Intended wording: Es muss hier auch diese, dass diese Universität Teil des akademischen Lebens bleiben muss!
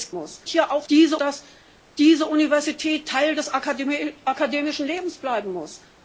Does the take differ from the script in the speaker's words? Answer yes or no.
no